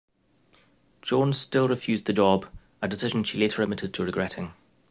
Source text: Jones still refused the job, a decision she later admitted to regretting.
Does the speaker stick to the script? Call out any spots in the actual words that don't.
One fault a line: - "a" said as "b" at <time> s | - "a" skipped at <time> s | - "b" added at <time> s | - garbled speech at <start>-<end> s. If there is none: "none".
none